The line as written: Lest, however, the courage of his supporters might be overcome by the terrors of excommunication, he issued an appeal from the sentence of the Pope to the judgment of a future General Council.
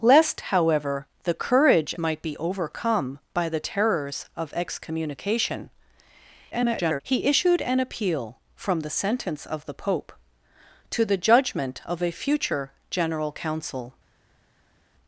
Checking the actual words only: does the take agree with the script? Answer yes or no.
no